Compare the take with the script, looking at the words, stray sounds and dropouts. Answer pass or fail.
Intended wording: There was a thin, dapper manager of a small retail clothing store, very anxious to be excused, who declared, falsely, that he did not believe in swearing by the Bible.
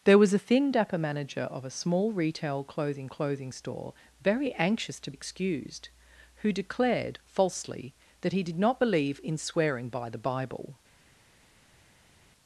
fail